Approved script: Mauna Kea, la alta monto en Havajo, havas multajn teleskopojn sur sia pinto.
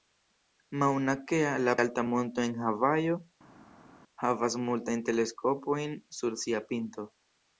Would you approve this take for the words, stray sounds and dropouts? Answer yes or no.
yes